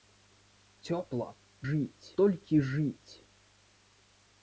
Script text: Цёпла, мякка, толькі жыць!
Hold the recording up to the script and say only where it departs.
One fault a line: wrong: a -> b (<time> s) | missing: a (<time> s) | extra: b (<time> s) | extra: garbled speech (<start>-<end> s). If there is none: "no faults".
wrong: мякка -> жыць (1.7 s)